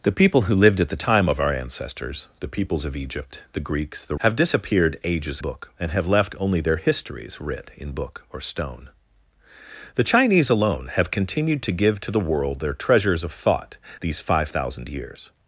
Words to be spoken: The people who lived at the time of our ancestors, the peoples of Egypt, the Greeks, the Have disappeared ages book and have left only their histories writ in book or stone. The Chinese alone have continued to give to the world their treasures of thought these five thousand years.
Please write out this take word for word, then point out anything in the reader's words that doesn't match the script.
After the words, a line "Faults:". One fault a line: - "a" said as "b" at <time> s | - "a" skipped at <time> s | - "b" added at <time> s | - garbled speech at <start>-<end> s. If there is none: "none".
The people who lived at the time of our ancestors, the peoples of Egypt, the Greeks, the Have disappeared ages book and have left only their histories writ in book or stone. The Chinese alone have continued to give to the world their treasures of thought these five thousand years.
Faults:
none